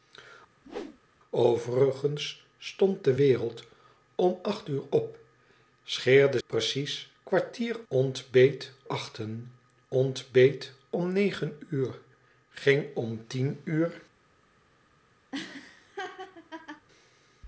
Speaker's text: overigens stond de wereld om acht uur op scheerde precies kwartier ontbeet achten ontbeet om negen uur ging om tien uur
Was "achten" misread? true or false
false